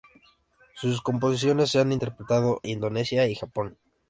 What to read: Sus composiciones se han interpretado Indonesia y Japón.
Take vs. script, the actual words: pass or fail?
pass